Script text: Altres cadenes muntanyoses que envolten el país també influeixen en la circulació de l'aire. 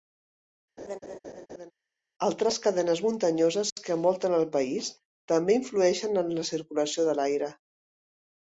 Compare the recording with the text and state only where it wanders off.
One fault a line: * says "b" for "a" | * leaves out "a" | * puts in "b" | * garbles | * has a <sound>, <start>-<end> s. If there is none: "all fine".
* has a laugh, 0.8-1.7 s